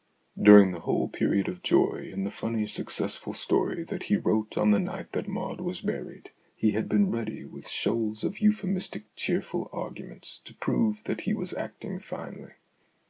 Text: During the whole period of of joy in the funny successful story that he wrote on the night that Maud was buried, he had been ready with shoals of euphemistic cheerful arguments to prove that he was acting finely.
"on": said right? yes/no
yes